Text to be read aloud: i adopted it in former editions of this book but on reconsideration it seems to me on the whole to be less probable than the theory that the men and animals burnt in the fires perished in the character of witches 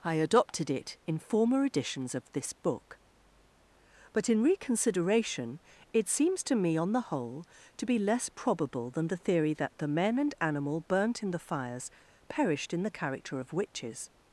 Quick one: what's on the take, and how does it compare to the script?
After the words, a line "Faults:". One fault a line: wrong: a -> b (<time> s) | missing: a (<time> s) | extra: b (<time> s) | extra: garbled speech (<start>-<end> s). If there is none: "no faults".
i adopted it in former editions of this book but in reconsideration it seems to me on the whole to be less probable than the theory that the men and animal burnt in the fires perished in the character of witches
Faults:
wrong: on -> in (4.3 s)
wrong: animals -> animal (10.4 s)